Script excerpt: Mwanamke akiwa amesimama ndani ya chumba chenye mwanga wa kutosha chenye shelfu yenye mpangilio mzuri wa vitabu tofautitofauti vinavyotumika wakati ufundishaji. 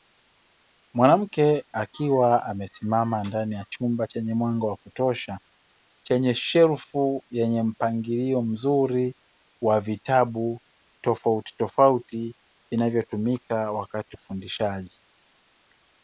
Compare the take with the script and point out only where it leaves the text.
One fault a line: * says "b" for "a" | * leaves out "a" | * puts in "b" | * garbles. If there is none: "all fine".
all fine